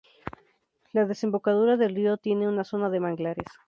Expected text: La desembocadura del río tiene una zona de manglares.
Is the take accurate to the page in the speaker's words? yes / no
yes